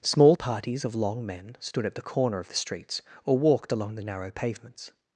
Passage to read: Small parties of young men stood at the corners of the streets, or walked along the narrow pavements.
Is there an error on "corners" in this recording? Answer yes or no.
yes